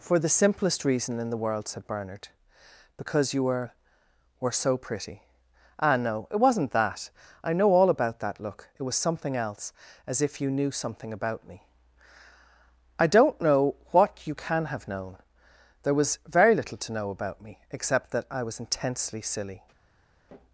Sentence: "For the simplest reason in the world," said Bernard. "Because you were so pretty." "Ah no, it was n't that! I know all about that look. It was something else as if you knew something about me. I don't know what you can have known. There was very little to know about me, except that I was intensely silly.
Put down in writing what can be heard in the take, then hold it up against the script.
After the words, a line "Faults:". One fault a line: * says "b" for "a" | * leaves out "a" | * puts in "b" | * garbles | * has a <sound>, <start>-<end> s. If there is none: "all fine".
"For the simplest reason in the world," said Bernard. "Because you were were so pretty." "Ah no, it was n't that! I know all about that look. It was something else as if you knew something about me. I don't know what you can have known. There was very little to know about me, except that I was intensely silly.
Faults:
* puts in "were"